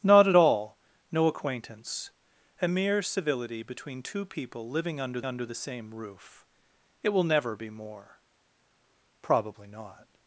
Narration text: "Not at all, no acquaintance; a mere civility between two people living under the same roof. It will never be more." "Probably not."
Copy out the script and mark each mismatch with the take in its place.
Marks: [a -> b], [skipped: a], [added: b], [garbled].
"Not at all, no acquaintance; a mere civility between two people living under [added: under] the same roof. It will never be more." "Probably not."